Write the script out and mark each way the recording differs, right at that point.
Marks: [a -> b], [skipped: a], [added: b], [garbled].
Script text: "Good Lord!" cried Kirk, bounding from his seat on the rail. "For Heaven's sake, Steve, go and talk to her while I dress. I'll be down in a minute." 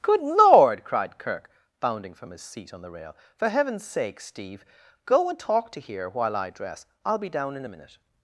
"Good Lord!" cried Kirk, bounding from his seat on the rail. "For Heaven's sake, Steve, go and talk to [her -> here] while I dress. I'll be down in a minute."